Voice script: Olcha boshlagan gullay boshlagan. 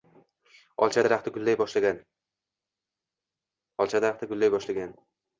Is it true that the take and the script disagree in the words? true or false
true